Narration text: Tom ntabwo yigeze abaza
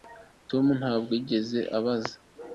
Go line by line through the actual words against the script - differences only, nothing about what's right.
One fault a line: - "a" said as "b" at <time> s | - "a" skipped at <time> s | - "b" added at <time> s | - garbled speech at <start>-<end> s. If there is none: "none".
none